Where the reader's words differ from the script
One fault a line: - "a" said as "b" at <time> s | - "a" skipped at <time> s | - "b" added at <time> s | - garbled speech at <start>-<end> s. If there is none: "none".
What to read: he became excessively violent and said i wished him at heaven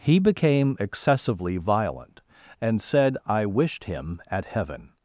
none